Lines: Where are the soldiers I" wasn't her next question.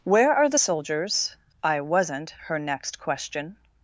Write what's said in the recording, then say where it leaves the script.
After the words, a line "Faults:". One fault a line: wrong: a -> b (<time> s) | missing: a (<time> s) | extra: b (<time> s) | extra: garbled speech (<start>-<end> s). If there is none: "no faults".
Where are the soldiers I" wasn't her next question.
Faults:
no faults